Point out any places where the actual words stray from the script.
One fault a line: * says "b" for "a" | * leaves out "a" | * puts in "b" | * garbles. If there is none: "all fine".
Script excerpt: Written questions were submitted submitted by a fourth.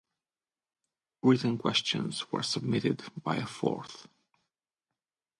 * leaves out "submitted"